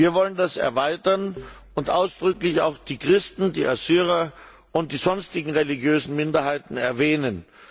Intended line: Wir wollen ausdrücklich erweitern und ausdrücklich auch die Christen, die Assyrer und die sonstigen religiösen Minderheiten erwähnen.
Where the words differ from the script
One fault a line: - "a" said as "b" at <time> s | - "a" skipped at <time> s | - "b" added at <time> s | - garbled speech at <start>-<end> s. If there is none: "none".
- "ausdrücklich" said as "das" at 0.3 s